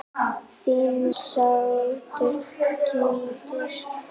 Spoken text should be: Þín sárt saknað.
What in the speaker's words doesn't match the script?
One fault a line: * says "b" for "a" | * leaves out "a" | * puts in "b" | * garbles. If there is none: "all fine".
all fine